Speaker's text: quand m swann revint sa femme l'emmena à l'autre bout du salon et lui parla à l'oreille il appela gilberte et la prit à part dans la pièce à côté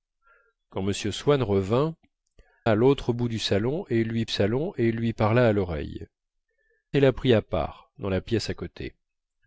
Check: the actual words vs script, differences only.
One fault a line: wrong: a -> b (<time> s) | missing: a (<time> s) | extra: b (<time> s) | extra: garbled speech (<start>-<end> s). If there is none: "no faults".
missing: sa femme l'emmena (1.9 s)
extra: salon et lui (4.3 s)
missing: il appela gilberte (6.0 s)